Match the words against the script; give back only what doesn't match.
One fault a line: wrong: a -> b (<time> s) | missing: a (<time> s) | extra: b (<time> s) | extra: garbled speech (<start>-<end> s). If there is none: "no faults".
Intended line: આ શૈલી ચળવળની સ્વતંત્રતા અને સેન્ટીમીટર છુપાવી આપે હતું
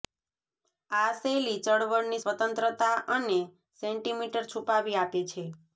wrong: હતું -> છે (5.3 s)